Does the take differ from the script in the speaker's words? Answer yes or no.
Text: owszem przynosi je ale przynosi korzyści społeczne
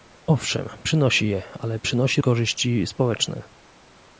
no